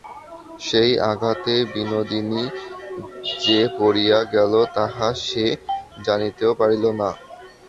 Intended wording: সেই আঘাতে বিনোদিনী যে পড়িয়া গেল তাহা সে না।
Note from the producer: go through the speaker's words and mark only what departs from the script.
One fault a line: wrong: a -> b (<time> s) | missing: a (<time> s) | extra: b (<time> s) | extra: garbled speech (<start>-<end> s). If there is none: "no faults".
extra: জানিতেও পারিল (6.1 s)